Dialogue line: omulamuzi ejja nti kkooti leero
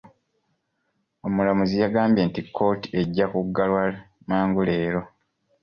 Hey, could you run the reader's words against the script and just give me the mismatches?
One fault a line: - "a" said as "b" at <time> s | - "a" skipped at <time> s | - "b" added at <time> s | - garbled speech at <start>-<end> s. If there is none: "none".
- "ejja" said as "yagambye" at 1.8 s
- "ejja kuggalwa mangu" added at 3.0 s